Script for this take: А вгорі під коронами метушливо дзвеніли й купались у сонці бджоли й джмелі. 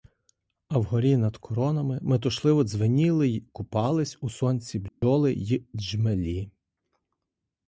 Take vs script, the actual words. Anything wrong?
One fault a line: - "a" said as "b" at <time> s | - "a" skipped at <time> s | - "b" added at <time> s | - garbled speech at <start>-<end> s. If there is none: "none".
- "під" said as "над" at 1.2 s